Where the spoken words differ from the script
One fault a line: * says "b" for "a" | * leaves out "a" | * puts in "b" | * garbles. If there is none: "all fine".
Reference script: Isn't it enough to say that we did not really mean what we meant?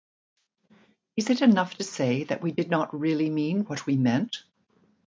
* says "Is" for "Isn't"